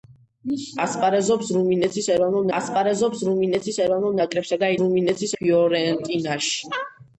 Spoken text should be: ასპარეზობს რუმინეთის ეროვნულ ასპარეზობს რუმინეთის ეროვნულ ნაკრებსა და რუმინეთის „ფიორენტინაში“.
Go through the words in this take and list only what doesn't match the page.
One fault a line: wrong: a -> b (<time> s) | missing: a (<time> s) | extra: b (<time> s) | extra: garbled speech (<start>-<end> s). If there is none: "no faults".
no faults